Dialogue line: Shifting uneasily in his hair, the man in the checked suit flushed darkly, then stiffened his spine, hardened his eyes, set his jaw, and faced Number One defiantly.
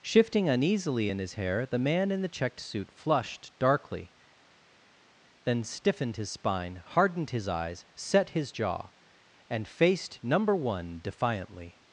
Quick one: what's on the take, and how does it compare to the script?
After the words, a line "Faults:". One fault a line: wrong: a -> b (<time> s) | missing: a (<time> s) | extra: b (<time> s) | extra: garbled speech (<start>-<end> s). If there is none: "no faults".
Shifting uneasily in his hair, the man in the checked suit flushed darkly, then stiffened his spine, hardened his eyes, set his jaw, and faced Number One defiantly.
Faults:
no faults